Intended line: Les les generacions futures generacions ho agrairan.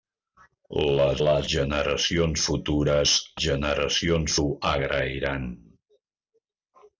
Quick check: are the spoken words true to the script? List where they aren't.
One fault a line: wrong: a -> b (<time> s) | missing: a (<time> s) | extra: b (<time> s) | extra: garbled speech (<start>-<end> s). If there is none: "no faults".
no faults